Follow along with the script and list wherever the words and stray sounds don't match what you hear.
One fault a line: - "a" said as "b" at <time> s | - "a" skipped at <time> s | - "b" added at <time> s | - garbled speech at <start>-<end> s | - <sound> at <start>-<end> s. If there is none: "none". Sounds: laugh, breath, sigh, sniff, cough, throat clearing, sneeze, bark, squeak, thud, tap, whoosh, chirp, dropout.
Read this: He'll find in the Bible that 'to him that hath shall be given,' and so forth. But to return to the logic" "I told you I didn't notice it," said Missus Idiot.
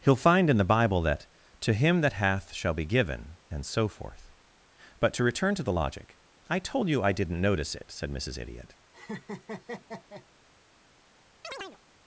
- laugh at 8.9-10.3 s
- chirp at 11.4-11.8 s